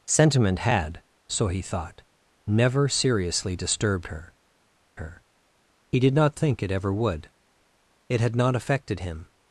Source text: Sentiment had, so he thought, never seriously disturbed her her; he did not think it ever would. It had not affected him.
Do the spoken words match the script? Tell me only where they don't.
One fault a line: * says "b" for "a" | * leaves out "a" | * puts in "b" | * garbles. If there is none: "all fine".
all fine